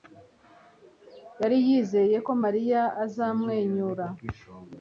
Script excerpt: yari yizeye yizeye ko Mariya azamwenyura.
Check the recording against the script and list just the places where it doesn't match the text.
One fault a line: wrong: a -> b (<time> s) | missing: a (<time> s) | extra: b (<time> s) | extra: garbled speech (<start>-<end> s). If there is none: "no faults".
missing: yizeye (2.2 s)